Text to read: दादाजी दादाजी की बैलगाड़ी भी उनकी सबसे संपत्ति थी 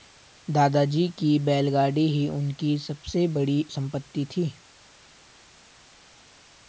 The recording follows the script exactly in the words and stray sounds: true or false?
false